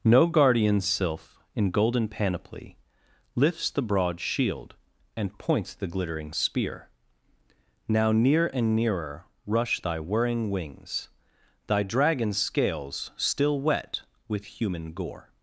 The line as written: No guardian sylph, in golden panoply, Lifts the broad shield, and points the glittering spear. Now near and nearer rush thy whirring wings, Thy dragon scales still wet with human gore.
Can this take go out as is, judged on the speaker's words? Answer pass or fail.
pass